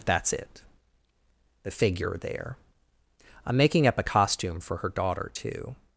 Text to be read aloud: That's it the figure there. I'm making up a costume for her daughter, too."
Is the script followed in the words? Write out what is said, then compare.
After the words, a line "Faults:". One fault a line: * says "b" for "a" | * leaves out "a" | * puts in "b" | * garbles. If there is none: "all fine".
That's it the figure there. I'm making up a costume for her daughter, too."
Faults:
all fine